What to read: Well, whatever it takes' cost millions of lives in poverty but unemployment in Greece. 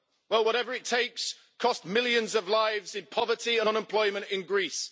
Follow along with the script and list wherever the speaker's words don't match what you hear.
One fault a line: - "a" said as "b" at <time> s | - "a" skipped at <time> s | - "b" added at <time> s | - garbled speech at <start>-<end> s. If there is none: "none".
- "but" said as "and" at 3.6 s